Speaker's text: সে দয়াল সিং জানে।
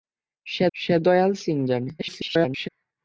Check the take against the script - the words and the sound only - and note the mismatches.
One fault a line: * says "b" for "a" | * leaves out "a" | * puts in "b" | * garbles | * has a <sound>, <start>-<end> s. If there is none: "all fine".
* puts in "সে"
* garbles